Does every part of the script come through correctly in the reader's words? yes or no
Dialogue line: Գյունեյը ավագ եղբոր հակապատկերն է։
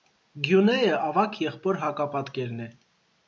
yes